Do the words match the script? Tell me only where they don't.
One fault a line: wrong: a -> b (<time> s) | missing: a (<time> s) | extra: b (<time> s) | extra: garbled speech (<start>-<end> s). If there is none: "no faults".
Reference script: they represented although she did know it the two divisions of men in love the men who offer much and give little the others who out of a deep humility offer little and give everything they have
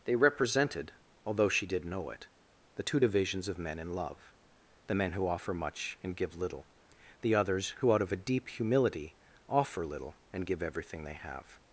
no faults